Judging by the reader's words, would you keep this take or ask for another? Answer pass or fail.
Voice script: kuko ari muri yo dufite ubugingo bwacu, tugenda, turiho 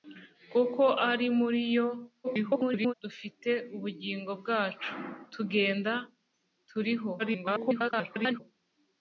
fail